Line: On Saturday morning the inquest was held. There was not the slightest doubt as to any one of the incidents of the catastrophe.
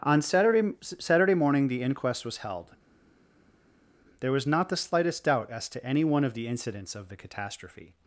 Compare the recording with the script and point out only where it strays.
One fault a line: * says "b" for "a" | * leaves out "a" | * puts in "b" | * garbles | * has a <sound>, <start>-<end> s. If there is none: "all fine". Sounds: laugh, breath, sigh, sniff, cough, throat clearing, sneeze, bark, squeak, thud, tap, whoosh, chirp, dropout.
* puts in "Saturday"